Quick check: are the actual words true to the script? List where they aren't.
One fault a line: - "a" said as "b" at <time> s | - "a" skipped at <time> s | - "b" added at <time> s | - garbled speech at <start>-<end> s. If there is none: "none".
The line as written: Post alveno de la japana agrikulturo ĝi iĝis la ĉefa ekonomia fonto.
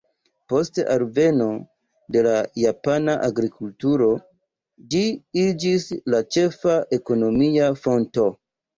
none